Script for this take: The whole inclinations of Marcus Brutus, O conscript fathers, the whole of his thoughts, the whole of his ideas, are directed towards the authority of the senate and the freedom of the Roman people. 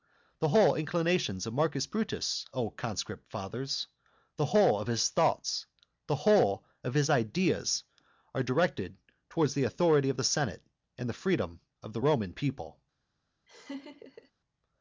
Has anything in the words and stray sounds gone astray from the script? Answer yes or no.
yes